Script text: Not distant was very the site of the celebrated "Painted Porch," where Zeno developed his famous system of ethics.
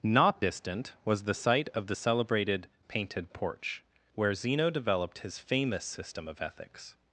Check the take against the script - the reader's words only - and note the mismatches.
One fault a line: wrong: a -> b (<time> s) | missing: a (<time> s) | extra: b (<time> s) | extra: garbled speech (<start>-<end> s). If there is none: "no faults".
missing: very (1.2 s)